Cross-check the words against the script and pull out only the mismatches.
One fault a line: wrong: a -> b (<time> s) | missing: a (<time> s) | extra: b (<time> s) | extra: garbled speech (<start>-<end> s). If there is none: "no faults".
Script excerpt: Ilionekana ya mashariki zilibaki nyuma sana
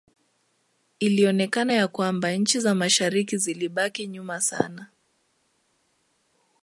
extra: kwamba nchi za (1.9 s)